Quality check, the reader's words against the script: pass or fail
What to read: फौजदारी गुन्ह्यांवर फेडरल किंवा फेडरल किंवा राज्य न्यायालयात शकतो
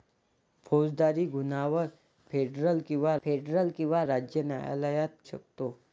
pass